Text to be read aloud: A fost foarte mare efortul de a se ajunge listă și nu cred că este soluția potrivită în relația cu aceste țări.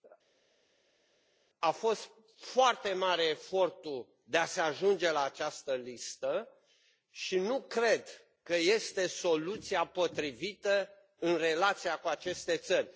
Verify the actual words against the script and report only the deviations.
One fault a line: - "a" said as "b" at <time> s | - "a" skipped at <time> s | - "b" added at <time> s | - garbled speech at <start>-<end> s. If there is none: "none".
- "la această" added at 5.1 s